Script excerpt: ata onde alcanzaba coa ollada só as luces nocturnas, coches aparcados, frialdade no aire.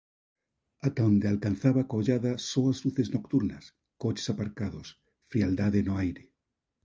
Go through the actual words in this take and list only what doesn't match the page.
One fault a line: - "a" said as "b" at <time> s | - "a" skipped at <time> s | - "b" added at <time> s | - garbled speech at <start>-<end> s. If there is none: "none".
none